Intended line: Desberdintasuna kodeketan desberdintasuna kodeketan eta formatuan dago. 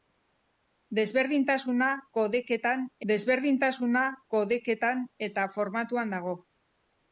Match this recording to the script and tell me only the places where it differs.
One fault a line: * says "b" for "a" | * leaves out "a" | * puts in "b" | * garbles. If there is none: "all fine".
all fine